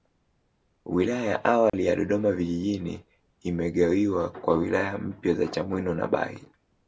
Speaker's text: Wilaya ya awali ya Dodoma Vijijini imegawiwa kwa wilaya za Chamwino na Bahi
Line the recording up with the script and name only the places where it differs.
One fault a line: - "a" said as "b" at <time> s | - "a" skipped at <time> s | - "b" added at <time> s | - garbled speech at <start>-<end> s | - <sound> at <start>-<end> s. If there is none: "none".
- dropout at 1.7-1.7 s
- "mpya" added at 5.0 s